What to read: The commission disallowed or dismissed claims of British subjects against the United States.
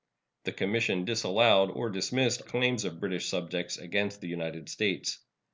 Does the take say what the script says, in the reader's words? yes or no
yes